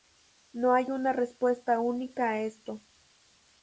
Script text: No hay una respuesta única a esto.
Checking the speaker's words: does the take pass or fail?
pass